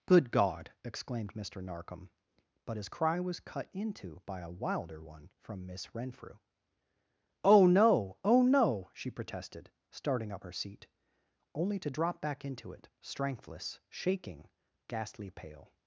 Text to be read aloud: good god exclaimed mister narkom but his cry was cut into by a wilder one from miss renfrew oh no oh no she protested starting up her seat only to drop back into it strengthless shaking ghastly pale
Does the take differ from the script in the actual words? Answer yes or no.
no